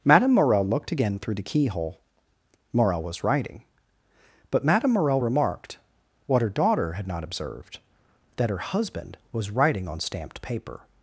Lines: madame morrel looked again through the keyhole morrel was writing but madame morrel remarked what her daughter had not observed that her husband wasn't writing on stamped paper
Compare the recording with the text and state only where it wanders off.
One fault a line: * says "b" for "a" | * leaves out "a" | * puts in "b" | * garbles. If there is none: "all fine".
* says "was" for "wasn't"